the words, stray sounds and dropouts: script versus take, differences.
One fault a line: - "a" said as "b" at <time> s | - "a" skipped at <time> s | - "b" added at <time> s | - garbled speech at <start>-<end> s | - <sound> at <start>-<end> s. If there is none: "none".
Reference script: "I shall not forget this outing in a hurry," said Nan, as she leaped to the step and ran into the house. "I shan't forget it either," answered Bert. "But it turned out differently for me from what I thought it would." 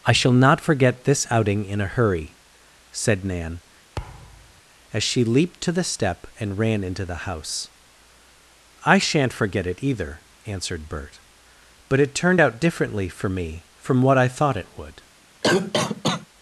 - thud at 4.0-4.6 s
- cough at 15.4-16.3 s